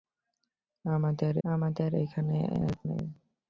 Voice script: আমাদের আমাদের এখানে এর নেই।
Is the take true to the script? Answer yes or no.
yes